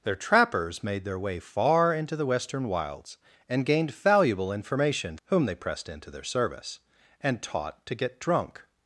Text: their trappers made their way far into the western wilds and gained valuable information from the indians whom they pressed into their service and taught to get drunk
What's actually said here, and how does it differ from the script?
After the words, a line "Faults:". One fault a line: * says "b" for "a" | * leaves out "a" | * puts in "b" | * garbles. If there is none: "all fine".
their trappers made their way far into the western wilds and gained valuable information whom they pressed into their service and taught to get drunk
Faults:
* leaves out "from the indians"